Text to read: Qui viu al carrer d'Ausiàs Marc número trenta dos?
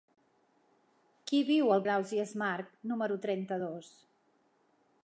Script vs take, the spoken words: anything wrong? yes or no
yes